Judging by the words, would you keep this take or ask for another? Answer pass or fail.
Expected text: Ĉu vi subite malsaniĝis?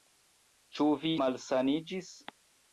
fail